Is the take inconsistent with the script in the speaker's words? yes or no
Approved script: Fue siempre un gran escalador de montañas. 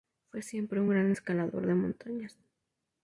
no